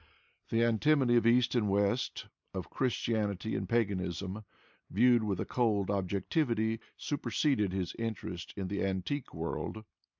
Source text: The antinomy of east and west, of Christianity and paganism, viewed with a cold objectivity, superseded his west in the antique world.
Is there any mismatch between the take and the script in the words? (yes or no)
yes